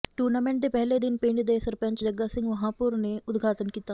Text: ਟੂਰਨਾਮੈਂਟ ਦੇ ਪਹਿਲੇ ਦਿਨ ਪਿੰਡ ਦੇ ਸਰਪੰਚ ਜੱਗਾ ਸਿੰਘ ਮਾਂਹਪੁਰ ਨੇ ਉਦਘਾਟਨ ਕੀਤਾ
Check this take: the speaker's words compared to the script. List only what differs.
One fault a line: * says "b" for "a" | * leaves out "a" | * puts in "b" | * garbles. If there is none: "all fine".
all fine